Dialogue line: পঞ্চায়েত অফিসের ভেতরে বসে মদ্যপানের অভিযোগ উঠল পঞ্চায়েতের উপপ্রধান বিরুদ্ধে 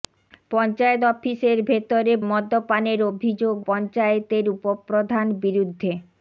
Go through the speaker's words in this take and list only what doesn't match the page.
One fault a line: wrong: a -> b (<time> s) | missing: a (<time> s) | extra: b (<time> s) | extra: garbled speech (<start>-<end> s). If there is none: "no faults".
missing: বসে (2.1 s)
missing: উঠল (3.6 s)